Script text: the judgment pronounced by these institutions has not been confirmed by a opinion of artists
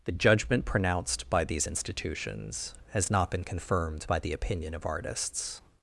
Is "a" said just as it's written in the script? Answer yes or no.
no